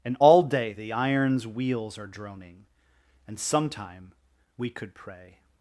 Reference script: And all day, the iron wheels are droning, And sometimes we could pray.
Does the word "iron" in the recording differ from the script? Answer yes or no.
yes